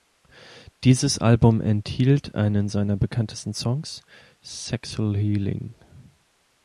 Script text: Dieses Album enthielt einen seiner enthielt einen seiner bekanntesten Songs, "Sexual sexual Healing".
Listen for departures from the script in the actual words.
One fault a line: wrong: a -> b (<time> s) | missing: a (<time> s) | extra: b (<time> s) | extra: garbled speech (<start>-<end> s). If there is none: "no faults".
missing: enthielt einen seiner (3.0 s)
missing: sexual (5.2 s)